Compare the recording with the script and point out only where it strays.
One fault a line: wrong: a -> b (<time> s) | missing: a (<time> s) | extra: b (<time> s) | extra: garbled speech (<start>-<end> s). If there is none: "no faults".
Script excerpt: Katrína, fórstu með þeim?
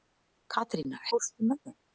no faults